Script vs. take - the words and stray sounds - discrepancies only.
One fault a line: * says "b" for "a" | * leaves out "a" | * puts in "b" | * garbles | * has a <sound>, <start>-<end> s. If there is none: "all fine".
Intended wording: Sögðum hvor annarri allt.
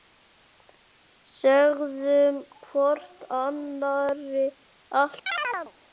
* has a chirp, 5.3-5.7 s